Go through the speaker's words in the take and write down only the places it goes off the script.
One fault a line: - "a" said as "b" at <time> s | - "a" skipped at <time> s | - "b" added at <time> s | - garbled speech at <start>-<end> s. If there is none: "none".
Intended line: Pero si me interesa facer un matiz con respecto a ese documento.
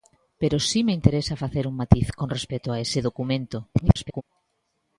- garbled speech at 3.7-4.2 s